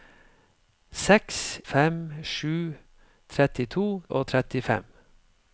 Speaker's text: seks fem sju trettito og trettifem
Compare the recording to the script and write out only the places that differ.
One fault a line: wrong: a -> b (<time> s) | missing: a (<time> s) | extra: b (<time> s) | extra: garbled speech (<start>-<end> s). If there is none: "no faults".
no faults